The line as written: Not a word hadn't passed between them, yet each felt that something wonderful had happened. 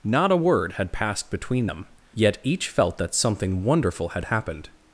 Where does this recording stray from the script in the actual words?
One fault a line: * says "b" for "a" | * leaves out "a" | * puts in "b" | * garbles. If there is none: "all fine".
* says "had" for "hadn't"